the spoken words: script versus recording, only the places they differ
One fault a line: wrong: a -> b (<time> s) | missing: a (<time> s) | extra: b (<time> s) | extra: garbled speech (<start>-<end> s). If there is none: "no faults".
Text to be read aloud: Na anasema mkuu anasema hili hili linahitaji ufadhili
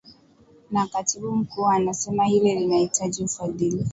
wrong: anasema -> katibu (0.9 s)
missing: hili (2.5 s)